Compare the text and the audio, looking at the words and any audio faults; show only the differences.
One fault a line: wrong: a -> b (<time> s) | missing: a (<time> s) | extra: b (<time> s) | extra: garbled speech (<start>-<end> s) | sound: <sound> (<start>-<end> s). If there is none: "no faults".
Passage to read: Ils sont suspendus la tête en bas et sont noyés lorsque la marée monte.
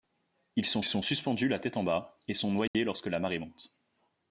extra: sont (0.8 s)
sound: dropout (2.7-2.7 s)